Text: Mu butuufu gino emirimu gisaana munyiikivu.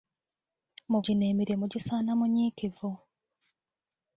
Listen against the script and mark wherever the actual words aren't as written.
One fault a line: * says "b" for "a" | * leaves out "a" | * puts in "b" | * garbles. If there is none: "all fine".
* leaves out "butuufu"